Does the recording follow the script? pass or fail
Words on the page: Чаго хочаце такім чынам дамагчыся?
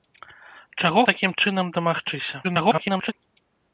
fail